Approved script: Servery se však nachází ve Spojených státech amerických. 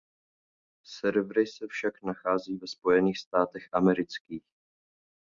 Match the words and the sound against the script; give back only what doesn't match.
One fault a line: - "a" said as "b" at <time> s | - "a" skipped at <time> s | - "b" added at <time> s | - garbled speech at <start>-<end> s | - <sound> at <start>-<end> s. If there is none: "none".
none